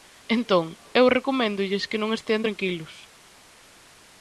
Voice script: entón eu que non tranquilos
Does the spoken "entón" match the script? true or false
true